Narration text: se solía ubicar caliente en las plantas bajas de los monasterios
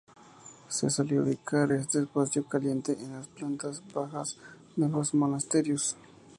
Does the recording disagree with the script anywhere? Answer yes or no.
yes